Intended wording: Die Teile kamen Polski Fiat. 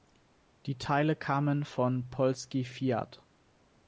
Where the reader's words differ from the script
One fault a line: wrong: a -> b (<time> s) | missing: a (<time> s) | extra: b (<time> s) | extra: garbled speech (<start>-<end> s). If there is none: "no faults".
extra: von (1.6 s)